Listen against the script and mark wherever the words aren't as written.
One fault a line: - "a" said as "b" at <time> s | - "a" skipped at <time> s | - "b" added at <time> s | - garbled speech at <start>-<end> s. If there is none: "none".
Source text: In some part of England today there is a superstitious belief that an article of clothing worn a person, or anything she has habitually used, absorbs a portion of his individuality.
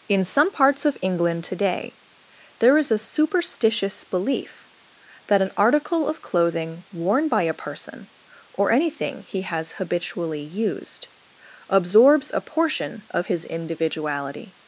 - "part" said as "parts" at 0.5 s
- "by" added at 7.3 s
- "she" said as "he" at 9.2 s